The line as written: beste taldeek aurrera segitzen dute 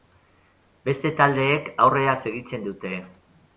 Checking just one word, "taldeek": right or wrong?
right